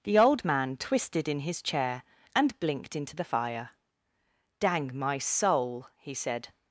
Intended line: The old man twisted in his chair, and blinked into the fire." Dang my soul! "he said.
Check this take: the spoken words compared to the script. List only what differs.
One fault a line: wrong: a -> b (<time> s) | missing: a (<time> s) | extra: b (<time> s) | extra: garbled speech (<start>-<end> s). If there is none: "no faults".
no faults